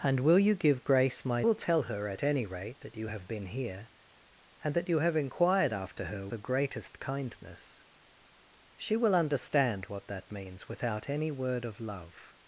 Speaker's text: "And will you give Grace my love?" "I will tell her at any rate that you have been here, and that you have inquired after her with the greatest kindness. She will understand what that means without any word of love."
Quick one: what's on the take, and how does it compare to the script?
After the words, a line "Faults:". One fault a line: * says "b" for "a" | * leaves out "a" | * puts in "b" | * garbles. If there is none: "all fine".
"And will you give Grace my will tell her at any rate that you have been here, and that you have inquired after her the greatest kindness. She will understand what that means without any word of love."
Faults:
* leaves out "love I"
* leaves out "with"